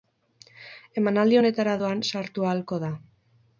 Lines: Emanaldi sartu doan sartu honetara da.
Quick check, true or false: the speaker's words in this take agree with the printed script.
false